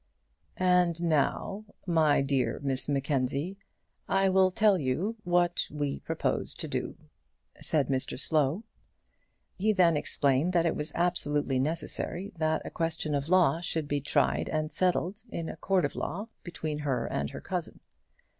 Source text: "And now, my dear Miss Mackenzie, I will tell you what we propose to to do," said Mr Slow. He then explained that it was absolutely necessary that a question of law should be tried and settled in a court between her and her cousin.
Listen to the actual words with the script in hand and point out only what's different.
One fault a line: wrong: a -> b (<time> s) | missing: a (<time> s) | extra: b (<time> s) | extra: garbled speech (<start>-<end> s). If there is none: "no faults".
missing: to (6.7 s)
extra: of law (15.8 s)